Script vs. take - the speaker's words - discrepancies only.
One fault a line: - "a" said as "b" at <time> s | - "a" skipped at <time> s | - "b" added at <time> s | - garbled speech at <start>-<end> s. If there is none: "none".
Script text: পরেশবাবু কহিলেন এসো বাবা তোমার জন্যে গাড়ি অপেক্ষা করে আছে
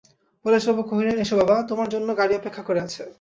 none